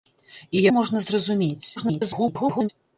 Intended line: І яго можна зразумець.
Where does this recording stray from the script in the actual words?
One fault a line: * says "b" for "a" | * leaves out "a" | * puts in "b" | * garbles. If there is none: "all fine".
* leaves out "яго"
* garbles